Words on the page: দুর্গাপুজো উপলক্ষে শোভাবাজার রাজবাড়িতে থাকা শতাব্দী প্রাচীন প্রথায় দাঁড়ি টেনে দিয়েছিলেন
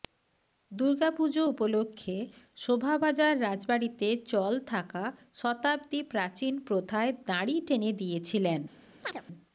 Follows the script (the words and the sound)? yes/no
no